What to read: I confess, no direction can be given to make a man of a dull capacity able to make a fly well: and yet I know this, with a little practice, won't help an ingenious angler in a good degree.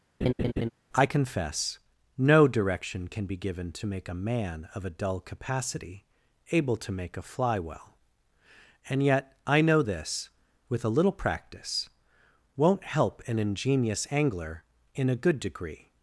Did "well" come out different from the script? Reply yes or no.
no